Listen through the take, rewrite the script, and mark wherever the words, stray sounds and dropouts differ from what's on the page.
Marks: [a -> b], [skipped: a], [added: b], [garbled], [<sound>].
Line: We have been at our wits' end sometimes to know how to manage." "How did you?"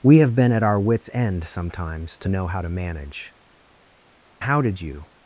We have been at our wits' end sometimes to know how to manage." "How did you?"